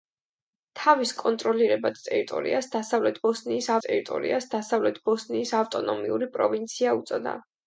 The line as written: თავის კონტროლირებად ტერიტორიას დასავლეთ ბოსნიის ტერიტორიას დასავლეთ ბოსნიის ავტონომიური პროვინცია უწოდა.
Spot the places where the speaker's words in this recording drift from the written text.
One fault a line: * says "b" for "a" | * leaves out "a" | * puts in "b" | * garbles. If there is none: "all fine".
all fine